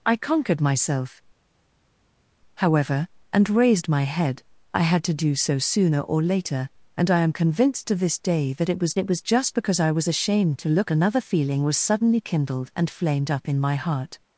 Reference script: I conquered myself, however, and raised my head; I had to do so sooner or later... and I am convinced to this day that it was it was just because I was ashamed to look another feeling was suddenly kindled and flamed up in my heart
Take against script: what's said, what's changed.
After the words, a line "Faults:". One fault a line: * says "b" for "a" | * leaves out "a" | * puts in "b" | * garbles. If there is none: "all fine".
I conquered myself, however, and raised my head; I had to do so sooner or later... and I am convinced to this day that it was it was just because I was ashamed to look another feeling was suddenly kindled and flamed up in my heart
Faults:
all fine